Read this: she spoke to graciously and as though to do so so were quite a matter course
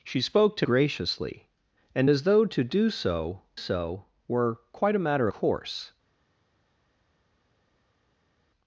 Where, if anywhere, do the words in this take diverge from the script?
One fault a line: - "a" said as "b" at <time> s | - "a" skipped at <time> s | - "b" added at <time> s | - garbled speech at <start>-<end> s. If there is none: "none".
none